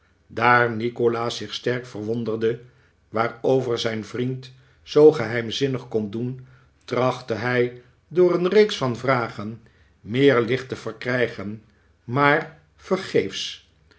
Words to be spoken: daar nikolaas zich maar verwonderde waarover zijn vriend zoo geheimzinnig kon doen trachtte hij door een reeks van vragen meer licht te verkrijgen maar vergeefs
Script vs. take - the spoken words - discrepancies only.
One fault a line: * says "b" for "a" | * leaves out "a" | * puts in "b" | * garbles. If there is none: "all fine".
* says "sterk" for "maar"